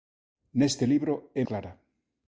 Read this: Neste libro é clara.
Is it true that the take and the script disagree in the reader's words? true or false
false